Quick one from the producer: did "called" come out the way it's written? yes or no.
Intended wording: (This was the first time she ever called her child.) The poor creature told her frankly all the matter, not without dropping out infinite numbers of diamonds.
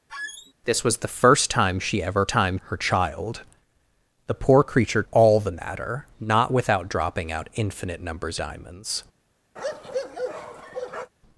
no